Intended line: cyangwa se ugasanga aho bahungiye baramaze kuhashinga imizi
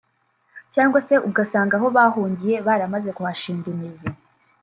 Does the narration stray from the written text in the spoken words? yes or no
no